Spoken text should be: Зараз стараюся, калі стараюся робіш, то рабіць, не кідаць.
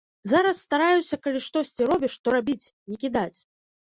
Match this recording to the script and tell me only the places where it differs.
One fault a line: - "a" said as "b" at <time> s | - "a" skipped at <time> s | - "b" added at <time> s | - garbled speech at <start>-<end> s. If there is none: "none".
- "стараюся" said as "штосьці" at 1.5 s